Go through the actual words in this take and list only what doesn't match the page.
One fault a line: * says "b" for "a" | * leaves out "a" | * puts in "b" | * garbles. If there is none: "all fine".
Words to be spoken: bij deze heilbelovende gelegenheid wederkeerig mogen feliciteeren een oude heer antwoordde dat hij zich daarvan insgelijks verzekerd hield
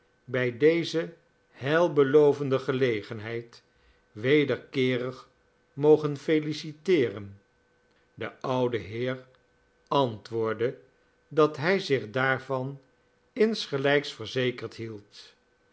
* says "de" for "een"